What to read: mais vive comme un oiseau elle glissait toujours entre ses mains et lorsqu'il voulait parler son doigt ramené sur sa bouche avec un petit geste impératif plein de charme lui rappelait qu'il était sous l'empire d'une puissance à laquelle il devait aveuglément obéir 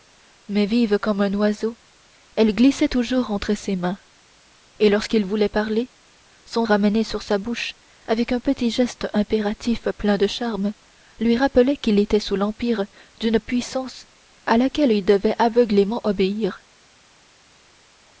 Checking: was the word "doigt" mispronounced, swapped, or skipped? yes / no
yes